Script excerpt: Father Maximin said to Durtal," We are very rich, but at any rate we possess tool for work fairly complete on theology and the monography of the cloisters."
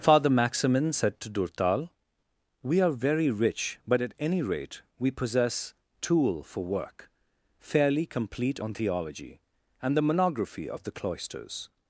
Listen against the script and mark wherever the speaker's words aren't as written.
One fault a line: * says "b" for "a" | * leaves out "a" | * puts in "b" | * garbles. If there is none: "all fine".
all fine